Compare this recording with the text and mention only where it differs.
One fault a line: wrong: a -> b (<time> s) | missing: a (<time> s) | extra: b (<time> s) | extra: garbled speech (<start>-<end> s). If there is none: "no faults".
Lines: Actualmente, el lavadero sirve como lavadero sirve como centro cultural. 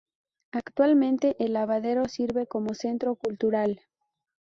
missing: lavadero sirve como (2.7 s)